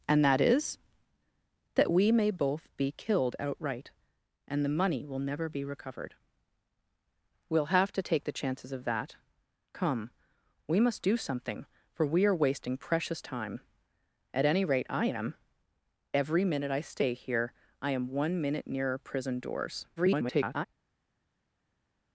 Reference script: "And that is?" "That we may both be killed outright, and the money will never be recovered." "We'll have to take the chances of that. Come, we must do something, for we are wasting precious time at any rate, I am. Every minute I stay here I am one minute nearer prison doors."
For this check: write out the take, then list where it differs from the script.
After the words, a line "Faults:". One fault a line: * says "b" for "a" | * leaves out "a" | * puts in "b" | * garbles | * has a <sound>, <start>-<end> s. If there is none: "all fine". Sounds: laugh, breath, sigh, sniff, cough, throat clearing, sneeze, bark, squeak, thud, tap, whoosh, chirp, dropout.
"And that is?" "That we may both be killed outright, and the money will never be recovered." "We'll have to take the chances of that. Come, we must do something, for we are wasting precious time at any rate, I am. Every minute I stay here I am one minute nearer prison doors." [garbled]
Faults:
* garbles